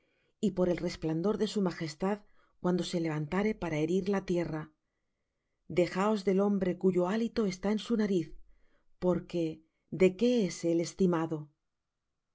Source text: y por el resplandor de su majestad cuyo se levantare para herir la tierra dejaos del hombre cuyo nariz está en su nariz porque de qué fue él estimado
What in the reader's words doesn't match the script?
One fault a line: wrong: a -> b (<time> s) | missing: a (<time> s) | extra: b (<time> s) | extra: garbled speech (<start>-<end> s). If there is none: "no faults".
wrong: cuyo -> cuando (2.6 s)
wrong: nariz -> hálito (7.1 s)
wrong: fue -> es (10.5 s)